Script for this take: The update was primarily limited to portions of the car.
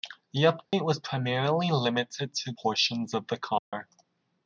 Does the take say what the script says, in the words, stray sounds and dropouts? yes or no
no